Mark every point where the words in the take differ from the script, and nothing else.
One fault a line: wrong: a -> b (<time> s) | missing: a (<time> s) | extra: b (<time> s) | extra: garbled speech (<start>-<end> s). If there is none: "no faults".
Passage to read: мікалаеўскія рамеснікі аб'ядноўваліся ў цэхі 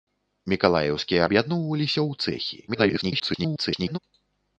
missing: рамеснікі (1.3 s)
extra: garbled speech (2.7-4.0 s)